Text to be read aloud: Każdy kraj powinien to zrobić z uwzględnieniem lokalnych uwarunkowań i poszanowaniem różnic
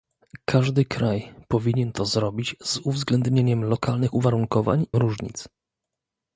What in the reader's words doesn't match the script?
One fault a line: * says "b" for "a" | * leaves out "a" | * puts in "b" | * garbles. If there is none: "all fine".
* leaves out "i poszanowaniem"